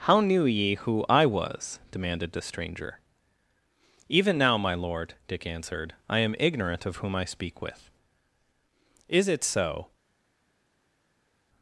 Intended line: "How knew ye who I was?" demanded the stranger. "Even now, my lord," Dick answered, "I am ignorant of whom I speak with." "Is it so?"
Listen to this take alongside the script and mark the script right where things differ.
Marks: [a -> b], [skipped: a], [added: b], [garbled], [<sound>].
"How knew ye who I was?" demanded the stranger. "Even now, my lord," Dick answered, "I am ignorant of whom I speak with." "Is it so?"